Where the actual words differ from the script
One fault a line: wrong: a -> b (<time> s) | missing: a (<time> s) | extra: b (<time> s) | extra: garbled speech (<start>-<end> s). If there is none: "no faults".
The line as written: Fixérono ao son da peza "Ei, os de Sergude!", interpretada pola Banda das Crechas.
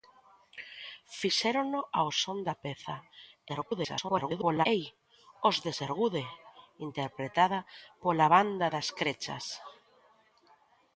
extra: garbled speech (3.5-4.7 s)